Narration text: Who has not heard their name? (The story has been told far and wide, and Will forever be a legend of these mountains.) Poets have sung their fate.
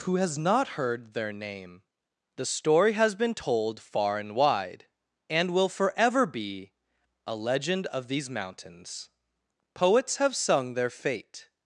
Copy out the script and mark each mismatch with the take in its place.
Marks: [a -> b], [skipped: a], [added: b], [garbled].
Who has not heard their name? (The story has been told far and wide, and Will forever be a legend of these mountains.) Poets have sung their fate.